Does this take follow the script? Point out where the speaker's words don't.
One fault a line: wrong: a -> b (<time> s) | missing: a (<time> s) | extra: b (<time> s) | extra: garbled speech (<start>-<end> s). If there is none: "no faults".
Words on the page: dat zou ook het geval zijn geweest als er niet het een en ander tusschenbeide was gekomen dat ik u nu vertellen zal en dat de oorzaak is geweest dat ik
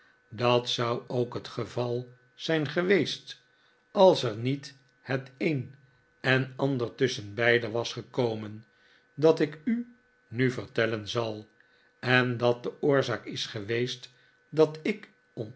no faults